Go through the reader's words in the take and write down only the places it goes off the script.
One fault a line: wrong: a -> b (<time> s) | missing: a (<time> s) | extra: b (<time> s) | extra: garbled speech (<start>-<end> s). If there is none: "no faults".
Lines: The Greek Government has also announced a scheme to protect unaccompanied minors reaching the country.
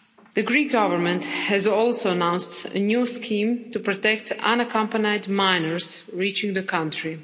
extra: new (2.8 s)